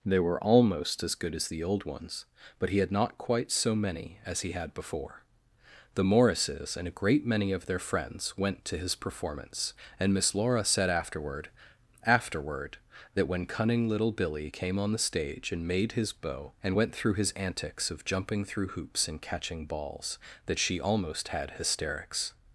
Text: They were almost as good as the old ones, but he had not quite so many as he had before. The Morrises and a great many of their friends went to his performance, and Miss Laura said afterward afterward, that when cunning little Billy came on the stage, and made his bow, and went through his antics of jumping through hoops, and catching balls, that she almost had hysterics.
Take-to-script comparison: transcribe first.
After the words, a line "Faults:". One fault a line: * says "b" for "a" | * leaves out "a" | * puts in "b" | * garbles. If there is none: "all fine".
They were almost as good as the old ones, but he had not quite so many as he had before. The Morrises and a great many of their friends went to his performance, and Miss Laura said afterward afterward, that when cunning little Billy came on the stage, and made his bow, and went through his antics of jumping through hoops, and catching balls, that she almost had hysterics.
Faults:
all fine